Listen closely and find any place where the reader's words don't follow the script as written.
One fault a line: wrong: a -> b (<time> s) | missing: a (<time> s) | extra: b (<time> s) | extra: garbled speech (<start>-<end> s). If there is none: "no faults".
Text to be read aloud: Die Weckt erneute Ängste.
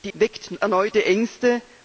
no faults